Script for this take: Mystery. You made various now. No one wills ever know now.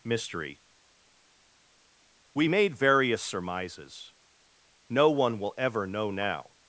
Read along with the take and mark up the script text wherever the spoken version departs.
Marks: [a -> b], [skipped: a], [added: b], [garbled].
Mystery. [You -> We] made various [now. -> surmises] No one [wills -> will] ever know now.